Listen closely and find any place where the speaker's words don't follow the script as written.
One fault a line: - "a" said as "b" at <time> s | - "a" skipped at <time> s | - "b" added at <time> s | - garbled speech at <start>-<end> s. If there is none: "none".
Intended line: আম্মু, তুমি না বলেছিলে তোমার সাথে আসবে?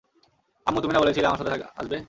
- "তোমার" said as "আমার" at 1.3 s